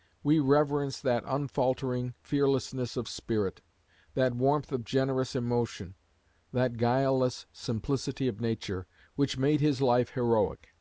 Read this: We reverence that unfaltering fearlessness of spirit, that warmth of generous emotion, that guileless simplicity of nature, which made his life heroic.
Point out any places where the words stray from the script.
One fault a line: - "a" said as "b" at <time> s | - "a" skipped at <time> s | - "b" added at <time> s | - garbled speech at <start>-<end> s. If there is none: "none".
none